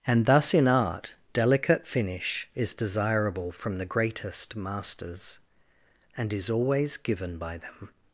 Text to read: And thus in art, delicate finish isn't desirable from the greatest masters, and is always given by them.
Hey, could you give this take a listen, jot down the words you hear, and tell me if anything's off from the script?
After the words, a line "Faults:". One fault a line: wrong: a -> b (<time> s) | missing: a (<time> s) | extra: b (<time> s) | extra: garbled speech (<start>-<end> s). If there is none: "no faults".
And thus in art, delicate finish is desirable from the greatest masters, and is always given by them.
Faults:
wrong: isn't -> is (2.5 s)